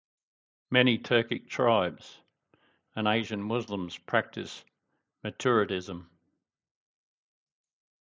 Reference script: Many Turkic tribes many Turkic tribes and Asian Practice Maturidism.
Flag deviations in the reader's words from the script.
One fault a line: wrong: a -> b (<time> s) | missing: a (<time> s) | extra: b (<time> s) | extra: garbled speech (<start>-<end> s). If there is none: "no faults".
missing: many Turkic tribes (2.2 s)
extra: Muslims (3.4 s)